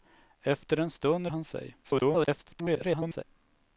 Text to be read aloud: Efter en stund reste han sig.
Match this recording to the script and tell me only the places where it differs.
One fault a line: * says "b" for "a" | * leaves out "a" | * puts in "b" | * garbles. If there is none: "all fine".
* leaves out "reste"
* garbles